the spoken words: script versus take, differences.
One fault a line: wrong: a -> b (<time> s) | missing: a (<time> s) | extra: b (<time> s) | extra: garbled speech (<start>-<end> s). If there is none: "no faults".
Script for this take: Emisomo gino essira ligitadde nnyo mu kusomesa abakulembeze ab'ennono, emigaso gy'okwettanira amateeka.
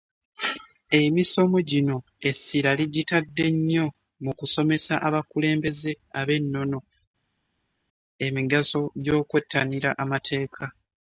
no faults